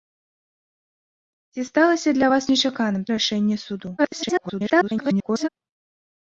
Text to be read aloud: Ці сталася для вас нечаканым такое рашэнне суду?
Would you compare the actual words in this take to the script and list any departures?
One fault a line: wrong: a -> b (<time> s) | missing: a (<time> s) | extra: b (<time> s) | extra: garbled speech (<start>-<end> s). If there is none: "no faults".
missing: такое (3.0 s)
extra: garbled speech (4.0-5.5 s)